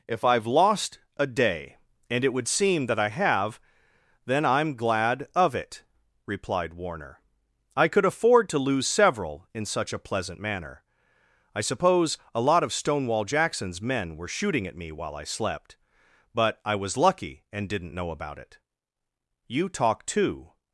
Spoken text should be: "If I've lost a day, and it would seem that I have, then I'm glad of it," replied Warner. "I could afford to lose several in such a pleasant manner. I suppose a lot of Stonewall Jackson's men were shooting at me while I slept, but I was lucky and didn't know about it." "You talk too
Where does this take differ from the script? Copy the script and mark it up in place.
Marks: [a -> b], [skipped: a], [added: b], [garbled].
"If I've lost a day, and it would seem that I have, then I'm glad of it," replied Warner. "I could afford to lose several in such a pleasant manner. I suppose a lot of Stonewall Jackson's men were shooting at me while I slept, but I was lucky and didn't know about it." "You talk too